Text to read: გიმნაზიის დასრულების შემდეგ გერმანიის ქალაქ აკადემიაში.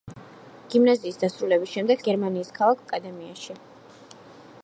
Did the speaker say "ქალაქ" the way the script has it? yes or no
yes